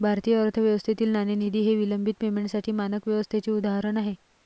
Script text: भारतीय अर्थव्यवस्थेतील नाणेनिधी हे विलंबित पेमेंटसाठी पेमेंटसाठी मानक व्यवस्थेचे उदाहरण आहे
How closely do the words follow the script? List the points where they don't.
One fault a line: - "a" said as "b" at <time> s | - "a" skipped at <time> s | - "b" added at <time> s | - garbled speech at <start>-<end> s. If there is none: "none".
- "पेमेंटसाठी" skipped at 2.7 s